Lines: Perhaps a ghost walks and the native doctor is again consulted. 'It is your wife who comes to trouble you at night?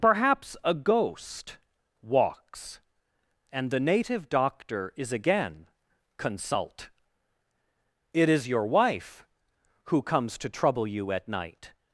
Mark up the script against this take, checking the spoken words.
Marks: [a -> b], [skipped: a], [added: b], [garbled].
Perhaps a ghost walks and the native doctor is again [consulted. -> consult] 'It is your wife who comes to trouble you at night?